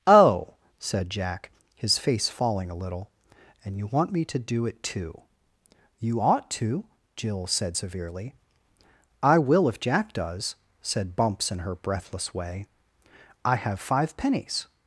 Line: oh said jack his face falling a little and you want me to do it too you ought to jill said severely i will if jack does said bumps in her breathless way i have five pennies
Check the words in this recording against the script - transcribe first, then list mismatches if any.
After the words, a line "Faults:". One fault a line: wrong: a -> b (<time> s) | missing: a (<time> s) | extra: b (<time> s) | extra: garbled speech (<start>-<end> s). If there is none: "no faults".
oh said jack his face falling a little and you want me to do it too you ought to jill said severely i will if jack does said bumps in her breathless way i have five pennies
Faults:
no faults